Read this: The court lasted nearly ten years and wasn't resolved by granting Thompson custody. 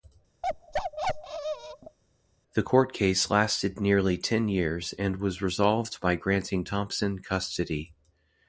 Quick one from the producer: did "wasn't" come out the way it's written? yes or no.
no